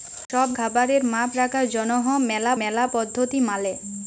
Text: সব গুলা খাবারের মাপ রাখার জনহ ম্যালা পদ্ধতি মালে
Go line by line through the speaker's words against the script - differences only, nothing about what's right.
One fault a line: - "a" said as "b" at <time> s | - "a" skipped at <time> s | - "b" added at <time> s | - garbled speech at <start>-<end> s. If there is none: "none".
- "গুলা" skipped at 0.5 s
- "ম্যালা" added at 2.6 s